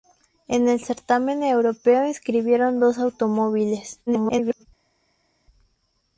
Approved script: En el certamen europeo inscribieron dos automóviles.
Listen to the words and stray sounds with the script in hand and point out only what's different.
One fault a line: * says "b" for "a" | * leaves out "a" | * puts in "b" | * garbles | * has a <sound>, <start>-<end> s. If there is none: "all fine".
* garbles